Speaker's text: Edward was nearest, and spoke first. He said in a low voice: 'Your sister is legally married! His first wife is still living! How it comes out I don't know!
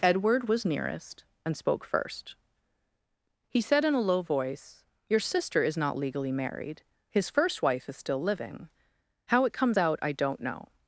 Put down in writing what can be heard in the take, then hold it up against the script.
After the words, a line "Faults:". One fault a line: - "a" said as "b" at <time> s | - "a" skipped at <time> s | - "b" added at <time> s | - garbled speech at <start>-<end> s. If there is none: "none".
Edward was nearest, and spoke first. He said in a low voice: 'Your sister is not legally married! His first wife is still living! How it comes out I don't know!
Faults:
- "not" added at 5.8 s